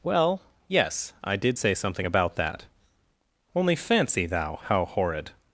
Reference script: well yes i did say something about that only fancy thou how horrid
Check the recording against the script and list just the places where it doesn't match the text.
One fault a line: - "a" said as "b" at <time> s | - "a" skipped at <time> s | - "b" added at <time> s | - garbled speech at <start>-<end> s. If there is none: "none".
none